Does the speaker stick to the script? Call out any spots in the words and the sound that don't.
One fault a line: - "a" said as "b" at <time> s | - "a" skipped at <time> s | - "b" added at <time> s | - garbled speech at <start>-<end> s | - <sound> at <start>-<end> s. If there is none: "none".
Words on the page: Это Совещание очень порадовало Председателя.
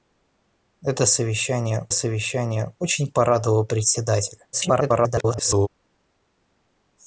- "Совещание" added at 1.9 s
- garbled speech at 4.5-5.7 s